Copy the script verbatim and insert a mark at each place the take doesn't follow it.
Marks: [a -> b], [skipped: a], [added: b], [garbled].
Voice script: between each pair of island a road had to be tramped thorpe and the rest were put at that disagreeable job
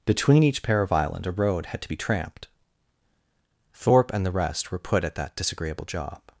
between each pair of island a road had to be tramped thorpe and the rest were put at that disagreeable job